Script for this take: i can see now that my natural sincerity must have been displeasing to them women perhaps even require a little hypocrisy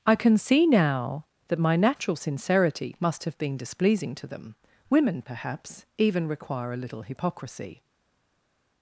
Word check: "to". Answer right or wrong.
right